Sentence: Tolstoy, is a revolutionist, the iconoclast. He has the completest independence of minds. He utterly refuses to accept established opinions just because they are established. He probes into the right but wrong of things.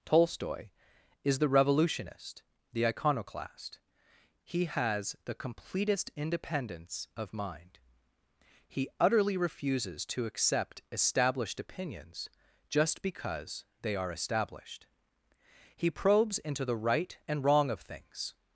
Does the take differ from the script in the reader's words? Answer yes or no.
yes